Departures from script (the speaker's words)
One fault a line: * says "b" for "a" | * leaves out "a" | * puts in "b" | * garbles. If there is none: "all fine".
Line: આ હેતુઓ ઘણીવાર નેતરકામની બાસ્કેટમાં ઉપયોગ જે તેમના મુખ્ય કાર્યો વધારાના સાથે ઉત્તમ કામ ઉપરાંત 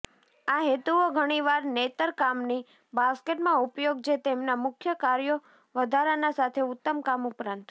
all fine